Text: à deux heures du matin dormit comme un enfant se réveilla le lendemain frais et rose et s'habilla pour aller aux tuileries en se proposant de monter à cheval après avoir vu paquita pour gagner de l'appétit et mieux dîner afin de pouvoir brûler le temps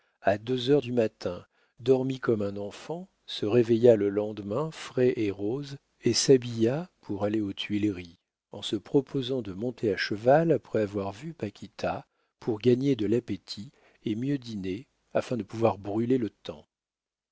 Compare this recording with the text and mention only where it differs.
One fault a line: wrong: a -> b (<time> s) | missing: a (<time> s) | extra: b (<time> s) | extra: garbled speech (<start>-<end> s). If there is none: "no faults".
no faults